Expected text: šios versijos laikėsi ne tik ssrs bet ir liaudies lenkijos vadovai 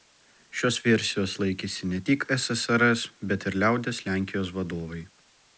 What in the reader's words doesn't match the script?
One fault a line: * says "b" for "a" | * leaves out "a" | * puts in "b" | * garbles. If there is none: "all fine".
all fine